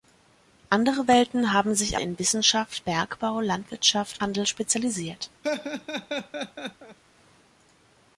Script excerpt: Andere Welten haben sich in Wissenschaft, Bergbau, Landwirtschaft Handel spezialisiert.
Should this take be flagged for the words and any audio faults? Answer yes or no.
yes